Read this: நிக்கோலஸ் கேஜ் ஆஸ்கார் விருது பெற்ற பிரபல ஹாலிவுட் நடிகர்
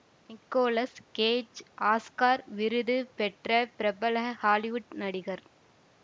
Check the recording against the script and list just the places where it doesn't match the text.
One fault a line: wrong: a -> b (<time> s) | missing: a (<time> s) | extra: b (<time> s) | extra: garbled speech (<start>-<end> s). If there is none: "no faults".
no faults